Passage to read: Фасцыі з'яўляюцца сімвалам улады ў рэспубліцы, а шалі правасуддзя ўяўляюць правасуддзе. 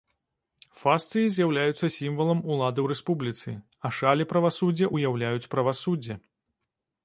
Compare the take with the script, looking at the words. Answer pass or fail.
pass